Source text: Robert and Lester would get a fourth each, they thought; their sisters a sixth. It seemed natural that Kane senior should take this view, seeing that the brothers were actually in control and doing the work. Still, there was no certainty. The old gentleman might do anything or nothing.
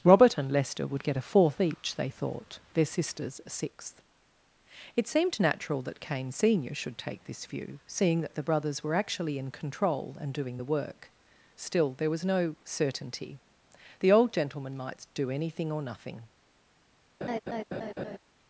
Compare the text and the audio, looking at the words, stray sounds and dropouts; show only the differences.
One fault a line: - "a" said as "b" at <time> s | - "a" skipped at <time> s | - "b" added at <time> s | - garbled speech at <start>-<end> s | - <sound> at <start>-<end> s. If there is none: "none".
- laugh at 17.2-18.2 s